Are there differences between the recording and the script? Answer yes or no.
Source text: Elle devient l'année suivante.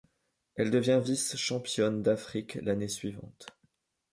yes